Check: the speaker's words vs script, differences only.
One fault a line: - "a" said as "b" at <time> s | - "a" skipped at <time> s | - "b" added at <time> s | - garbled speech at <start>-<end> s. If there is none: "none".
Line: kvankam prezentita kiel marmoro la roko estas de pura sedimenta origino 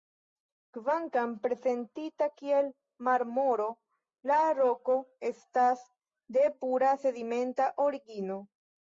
none